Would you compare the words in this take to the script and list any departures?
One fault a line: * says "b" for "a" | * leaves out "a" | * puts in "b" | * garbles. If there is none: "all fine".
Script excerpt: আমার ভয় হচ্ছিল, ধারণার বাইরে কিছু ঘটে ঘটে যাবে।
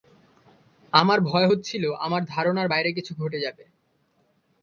* puts in "আমার"
* leaves out "ঘটে"